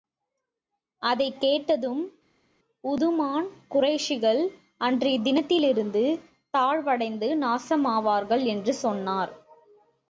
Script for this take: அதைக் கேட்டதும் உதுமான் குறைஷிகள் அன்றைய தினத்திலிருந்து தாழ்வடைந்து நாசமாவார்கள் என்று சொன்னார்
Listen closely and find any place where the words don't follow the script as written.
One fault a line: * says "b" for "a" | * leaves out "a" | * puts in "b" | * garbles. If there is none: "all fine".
all fine